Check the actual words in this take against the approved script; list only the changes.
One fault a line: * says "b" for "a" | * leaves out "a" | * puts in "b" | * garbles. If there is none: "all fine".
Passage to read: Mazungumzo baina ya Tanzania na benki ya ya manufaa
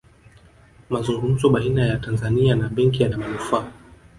all fine